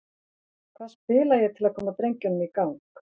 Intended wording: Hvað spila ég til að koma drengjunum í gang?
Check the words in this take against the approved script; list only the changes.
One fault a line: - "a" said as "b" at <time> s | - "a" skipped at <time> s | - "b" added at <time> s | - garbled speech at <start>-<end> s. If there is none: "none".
none